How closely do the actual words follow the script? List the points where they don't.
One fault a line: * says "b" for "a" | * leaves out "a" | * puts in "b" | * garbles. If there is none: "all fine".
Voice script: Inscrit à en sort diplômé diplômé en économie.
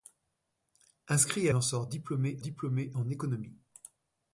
all fine